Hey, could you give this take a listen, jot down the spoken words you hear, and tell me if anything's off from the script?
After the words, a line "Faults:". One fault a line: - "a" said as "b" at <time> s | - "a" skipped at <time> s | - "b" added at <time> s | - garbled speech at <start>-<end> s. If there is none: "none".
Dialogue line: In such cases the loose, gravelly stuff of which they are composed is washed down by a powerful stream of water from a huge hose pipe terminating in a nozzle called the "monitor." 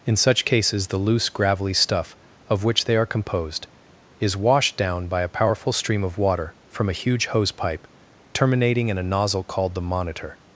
In such cases the loose, gravelly stuff of which they are composed is washed down by a powerful stream of water from a huge hose pipe terminating in a nozzle called the "monitor."
Faults:
none